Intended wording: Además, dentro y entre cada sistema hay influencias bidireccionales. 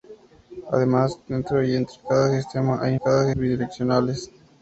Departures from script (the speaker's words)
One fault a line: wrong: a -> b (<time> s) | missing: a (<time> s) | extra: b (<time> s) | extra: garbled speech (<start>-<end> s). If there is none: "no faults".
wrong: influencias -> cada (3.0 s)